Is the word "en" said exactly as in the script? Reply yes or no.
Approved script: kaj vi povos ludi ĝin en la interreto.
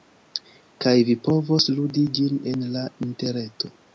yes